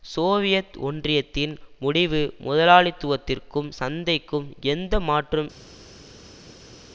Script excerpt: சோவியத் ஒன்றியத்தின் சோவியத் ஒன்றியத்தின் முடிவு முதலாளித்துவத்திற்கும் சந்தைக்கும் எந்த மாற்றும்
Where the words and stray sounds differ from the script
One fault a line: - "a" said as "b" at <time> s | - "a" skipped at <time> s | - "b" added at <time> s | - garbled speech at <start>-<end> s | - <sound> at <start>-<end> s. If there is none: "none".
- "சோவியத் ஒன்றியத்தின்" skipped at 1.5 s